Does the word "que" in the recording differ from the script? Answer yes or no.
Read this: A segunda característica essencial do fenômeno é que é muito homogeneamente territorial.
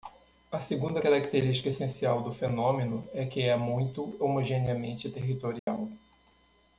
no